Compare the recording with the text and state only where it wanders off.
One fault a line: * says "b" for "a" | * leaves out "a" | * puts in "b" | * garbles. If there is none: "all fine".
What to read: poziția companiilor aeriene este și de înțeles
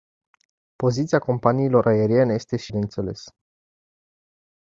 all fine